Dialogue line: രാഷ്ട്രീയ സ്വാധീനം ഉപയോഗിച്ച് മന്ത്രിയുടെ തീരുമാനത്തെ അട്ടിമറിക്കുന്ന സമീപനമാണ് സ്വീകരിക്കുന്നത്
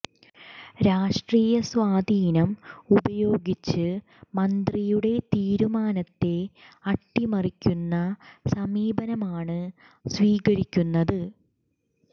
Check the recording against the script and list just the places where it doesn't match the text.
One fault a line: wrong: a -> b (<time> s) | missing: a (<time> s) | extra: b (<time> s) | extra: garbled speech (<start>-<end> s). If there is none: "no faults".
no faults